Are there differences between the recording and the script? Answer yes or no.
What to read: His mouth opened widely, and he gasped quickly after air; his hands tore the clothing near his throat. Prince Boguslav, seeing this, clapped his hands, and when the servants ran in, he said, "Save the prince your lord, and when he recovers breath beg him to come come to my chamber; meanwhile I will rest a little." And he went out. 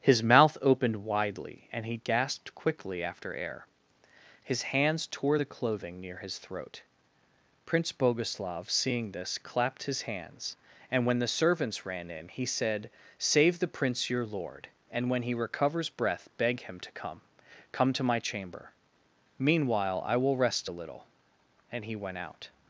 no